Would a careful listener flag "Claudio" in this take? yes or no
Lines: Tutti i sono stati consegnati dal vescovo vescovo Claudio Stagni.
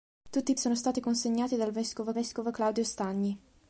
no